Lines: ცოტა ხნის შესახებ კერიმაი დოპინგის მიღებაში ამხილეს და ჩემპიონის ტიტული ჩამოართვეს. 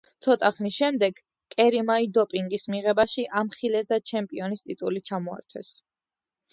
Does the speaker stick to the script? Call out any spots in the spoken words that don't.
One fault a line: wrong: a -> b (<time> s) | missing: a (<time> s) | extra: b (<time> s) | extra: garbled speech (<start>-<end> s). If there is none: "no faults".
wrong: შესახებ -> შემდეგ (0.8 s)